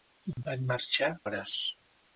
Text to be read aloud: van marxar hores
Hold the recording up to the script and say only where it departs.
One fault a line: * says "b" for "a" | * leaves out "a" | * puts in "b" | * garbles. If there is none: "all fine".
all fine